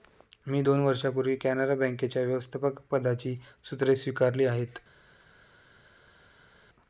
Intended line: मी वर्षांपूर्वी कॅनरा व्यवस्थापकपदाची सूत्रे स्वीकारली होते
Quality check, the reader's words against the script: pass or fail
fail